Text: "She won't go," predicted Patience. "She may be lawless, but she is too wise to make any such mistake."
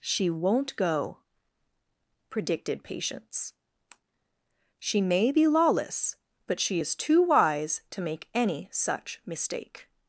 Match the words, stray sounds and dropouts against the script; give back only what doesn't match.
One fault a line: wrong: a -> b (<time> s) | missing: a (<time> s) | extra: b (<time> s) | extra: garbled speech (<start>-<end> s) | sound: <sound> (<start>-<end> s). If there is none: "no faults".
no faults